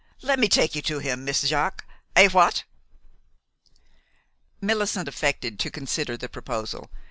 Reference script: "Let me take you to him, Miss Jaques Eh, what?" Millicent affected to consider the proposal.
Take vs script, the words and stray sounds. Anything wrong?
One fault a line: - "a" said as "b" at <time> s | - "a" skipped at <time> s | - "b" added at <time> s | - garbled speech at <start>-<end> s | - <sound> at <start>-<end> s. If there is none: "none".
none